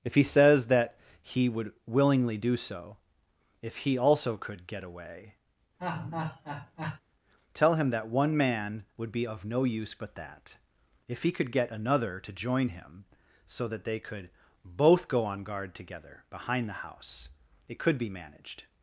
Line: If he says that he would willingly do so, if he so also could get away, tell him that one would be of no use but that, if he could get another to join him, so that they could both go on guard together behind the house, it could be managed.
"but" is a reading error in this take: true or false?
false